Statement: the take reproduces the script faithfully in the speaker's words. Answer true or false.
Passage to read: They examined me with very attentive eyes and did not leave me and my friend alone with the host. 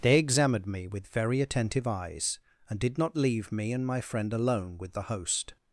true